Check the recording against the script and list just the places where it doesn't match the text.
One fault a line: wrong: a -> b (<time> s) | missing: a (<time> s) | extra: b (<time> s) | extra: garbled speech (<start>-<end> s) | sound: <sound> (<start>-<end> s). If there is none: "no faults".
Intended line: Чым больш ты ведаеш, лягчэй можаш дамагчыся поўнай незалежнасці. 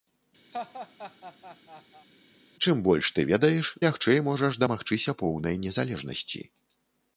sound: laugh (0.5-2.1 s)